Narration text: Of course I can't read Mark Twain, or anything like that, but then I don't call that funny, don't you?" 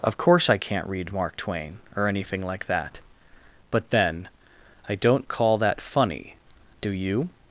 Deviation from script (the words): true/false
true